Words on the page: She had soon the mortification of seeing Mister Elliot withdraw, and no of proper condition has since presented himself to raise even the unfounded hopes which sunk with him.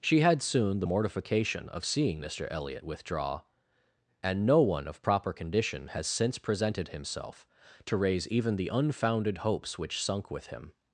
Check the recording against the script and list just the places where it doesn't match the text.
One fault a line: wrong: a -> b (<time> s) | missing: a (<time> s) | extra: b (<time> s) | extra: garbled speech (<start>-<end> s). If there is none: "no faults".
extra: one (4.6 s)